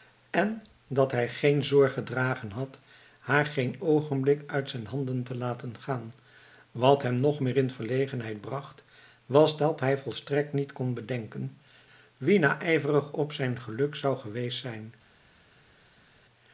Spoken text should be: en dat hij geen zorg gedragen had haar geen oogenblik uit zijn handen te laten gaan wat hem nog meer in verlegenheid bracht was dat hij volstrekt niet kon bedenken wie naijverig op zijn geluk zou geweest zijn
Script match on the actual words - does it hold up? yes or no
yes